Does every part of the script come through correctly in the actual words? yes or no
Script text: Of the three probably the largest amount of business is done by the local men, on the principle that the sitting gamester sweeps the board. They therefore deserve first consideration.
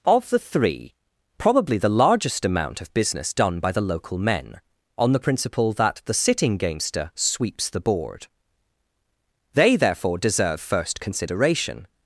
no